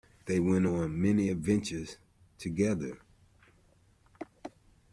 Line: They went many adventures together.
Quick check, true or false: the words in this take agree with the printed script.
false